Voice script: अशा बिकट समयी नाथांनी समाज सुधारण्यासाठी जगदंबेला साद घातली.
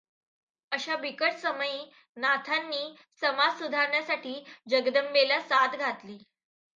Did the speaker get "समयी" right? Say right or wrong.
right